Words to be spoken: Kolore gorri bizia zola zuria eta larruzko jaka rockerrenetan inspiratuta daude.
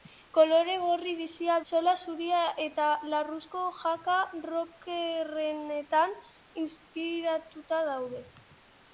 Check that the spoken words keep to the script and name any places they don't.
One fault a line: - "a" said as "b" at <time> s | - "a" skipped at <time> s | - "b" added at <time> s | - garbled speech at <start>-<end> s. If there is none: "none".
none